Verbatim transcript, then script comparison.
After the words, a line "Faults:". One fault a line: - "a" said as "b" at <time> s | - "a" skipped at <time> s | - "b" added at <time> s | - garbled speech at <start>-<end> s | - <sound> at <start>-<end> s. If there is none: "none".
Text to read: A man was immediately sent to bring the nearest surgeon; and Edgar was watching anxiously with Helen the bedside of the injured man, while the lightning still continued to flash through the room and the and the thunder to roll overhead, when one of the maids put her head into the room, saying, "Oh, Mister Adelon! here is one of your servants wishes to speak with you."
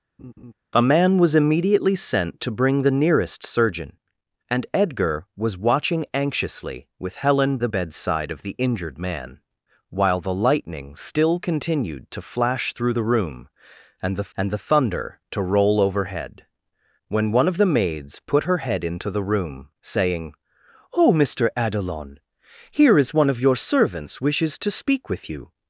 A man was immediately sent to bring the nearest surgeon; and Edgar was watching anxiously with Helen the bedside of the injured man, while the lightning still continued to flash through the room and the and the thunder to roll overhead, when one of the maids put her head into the room, saying, "Oh, Mister Adelon! here is one of your servants wishes to speak with you."
Faults:
- laugh at 0.2-0.5 s